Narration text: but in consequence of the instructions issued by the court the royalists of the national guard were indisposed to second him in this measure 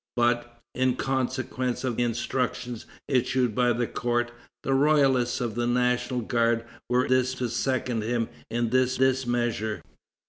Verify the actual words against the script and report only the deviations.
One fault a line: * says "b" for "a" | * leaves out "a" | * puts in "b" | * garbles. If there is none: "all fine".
* leaves out "the"
* says "this" for "indisposed"
* puts in "this"